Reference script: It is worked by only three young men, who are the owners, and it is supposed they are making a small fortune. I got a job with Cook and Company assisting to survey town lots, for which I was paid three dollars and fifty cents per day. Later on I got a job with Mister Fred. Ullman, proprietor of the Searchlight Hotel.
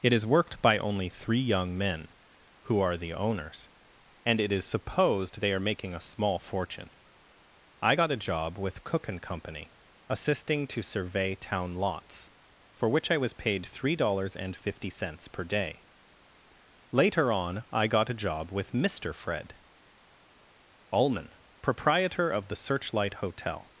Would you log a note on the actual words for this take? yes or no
no